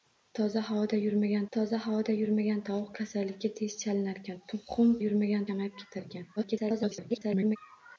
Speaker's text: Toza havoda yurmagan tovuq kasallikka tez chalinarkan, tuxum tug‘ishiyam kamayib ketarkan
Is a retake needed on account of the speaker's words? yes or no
yes